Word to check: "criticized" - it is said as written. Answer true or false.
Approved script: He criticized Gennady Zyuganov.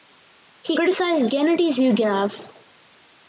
true